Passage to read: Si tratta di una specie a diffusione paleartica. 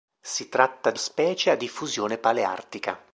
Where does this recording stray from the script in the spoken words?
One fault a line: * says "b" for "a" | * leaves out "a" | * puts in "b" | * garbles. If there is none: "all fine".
* leaves out "una"